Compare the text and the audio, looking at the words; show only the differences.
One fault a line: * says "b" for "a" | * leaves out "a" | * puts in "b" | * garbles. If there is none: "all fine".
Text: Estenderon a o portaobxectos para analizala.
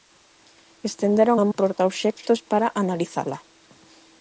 all fine